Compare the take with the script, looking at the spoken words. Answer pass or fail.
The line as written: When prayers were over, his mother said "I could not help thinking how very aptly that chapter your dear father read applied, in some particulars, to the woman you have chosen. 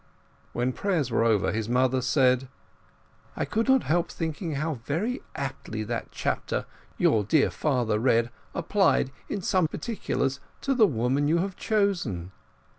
pass